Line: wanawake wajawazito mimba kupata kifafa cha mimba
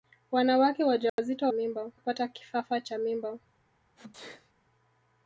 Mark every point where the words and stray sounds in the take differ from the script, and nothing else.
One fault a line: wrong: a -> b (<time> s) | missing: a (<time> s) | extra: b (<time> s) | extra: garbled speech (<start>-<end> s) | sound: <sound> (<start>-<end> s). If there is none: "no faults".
sound: dropout (1.1-1.2 s)
sound: sneeze (4.0-4.5 s)